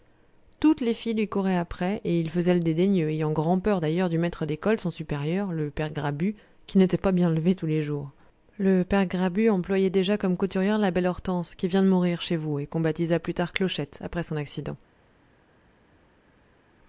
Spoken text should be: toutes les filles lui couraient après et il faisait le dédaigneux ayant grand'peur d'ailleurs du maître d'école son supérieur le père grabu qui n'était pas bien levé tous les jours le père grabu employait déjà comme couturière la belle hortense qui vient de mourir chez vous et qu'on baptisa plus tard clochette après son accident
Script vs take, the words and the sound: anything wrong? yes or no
no